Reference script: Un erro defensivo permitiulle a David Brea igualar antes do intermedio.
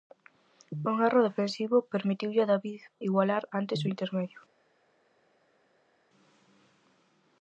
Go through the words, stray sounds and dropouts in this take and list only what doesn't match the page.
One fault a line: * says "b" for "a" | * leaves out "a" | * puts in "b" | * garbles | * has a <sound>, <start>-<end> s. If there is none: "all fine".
* leaves out "Brea"